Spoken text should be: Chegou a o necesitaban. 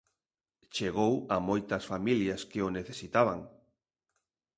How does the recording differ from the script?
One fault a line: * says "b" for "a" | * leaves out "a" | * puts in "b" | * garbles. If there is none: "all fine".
* puts in "moitas familias que"